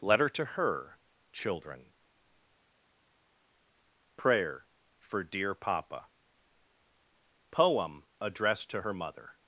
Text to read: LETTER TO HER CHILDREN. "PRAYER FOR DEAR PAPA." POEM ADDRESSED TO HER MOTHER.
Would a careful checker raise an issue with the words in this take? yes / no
no